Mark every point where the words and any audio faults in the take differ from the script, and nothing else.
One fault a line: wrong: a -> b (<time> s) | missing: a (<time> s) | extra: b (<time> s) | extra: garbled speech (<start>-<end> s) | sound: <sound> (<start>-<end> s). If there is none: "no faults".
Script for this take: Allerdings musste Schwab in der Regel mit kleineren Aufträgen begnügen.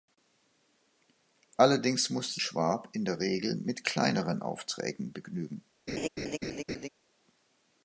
sound: laugh (5.9-6.9 s)